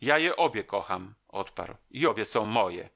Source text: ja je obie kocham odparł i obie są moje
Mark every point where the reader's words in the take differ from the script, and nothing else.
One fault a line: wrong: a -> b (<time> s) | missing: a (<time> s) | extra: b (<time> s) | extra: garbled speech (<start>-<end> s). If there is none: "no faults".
no faults